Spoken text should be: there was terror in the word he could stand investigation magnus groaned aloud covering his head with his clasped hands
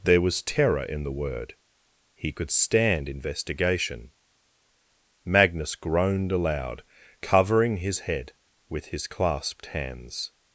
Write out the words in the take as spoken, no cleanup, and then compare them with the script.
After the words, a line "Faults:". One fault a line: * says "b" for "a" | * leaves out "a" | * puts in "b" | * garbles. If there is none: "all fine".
there was terror in the word he could stand investigation magnus groaned aloud covering his head with his clasped hands
Faults:
all fine